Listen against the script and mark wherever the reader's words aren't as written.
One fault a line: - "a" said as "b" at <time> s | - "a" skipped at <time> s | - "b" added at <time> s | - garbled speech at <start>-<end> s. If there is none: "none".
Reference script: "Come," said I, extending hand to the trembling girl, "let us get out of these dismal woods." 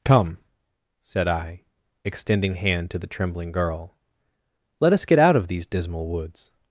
none